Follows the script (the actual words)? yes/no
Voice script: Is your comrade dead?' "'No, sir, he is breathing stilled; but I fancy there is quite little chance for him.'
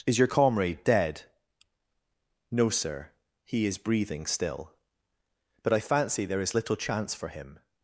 no